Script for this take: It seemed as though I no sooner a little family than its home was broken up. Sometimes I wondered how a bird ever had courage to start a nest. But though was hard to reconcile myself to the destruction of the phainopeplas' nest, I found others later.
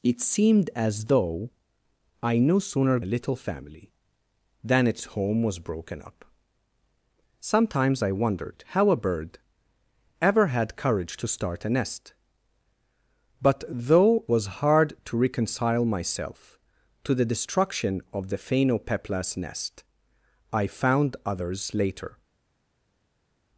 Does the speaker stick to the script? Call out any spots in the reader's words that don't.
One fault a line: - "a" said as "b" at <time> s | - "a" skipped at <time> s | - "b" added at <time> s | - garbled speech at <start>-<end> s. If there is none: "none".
none